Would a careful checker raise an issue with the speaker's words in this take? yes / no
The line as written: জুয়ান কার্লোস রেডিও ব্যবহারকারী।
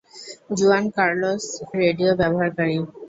no